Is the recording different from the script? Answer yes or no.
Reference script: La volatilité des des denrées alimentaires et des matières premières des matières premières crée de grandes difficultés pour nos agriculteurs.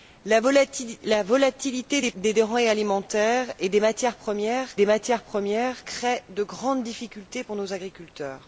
no